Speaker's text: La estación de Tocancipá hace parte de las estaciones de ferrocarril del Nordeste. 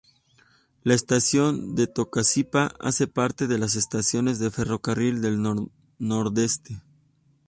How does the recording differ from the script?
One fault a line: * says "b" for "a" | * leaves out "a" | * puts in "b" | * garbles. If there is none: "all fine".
all fine